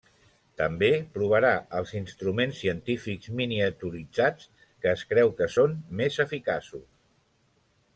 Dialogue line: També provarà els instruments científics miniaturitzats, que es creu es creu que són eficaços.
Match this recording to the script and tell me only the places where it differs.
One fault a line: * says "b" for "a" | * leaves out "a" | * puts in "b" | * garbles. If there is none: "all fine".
* leaves out "es creu"
* puts in "més"